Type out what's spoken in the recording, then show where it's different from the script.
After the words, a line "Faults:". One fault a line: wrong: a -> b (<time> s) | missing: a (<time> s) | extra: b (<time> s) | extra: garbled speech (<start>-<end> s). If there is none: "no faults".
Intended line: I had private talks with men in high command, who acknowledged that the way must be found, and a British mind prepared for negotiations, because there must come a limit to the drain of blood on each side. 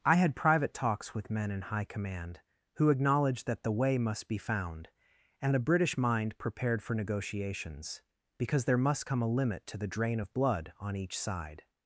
I had private talks with men in high command, who acknowledged that the way must be found, and a British mind prepared for negotiations, because there must come a limit to the drain of blood on each side.
Faults:
no faults